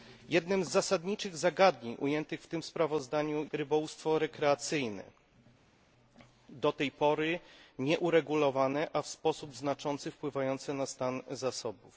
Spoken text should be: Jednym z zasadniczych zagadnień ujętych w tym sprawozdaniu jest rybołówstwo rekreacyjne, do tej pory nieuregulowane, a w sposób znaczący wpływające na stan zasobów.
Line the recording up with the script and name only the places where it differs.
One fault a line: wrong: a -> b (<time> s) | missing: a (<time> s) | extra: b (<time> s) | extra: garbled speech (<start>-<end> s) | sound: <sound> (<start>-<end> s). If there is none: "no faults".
missing: jest (3.5 s)